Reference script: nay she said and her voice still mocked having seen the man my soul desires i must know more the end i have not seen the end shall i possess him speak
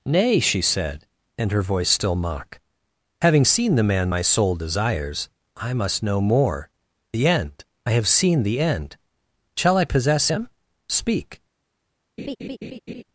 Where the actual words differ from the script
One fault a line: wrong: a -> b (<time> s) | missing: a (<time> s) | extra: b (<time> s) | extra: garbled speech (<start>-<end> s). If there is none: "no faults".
wrong: mocked -> mock (2.1 s)
missing: not (8.1 s)